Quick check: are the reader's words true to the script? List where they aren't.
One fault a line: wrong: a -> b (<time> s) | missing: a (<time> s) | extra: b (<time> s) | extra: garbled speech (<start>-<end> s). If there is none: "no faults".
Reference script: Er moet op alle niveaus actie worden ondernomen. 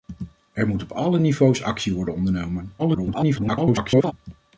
extra: garbled speech (2.8-4.1 s)